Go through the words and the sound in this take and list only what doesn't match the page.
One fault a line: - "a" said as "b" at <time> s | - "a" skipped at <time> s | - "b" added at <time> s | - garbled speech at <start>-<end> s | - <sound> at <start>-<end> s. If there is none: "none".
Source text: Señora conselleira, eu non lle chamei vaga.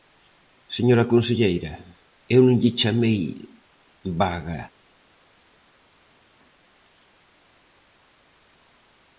none